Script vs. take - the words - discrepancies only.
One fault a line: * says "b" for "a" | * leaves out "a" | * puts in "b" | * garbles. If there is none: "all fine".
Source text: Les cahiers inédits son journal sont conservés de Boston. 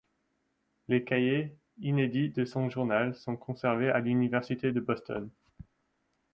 * puts in "de"
* puts in "à l'Université"